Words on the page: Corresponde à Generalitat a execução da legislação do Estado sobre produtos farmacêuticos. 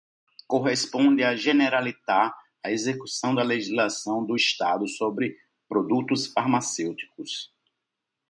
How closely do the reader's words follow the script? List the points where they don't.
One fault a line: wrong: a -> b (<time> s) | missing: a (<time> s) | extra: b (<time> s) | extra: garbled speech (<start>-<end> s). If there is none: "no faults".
no faults